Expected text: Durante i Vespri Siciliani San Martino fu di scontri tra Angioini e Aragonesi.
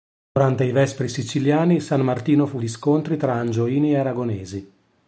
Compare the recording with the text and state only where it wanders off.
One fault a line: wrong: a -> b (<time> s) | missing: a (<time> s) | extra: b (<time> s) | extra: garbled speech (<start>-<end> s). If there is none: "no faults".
no faults